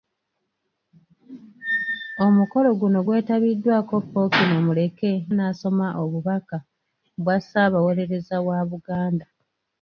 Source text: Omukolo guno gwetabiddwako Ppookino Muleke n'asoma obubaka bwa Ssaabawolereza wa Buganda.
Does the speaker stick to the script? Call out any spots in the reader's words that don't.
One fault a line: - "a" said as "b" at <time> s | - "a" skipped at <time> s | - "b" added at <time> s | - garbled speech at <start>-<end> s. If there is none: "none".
none